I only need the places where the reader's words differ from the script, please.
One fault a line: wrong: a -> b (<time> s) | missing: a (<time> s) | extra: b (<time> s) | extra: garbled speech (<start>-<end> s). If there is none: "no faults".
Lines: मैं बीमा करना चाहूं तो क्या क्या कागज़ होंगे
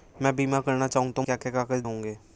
no faults